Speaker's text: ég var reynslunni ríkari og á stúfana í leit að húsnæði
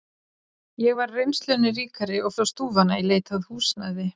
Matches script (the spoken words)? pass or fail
pass